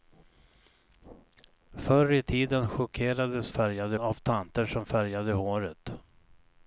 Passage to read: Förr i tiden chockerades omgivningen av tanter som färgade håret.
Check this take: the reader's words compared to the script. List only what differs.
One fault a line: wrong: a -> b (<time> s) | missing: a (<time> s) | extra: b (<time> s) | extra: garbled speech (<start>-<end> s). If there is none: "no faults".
wrong: omgivningen -> färgade (3.5 s)